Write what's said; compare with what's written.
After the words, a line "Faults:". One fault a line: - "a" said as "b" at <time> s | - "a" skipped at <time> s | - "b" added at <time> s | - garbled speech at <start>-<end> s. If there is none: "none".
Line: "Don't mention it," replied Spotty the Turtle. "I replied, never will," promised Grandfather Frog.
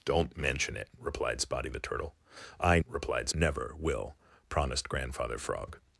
"Don't mention it," replied Spotty the Turtle. "I replied, never will," promised Grandfather Frog.
Faults:
none